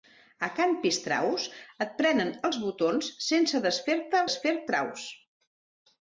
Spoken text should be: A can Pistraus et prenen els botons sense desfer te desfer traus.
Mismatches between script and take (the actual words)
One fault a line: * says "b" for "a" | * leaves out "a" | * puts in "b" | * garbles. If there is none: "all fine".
all fine